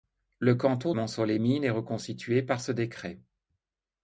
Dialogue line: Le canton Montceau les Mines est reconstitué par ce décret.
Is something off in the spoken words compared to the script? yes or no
no